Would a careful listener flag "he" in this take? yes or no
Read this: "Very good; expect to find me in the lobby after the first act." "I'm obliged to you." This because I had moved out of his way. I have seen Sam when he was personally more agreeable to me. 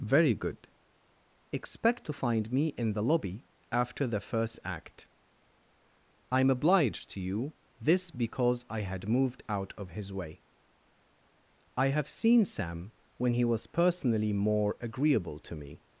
no